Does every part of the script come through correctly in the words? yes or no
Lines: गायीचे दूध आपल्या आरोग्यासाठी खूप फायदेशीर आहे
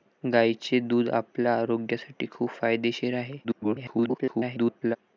no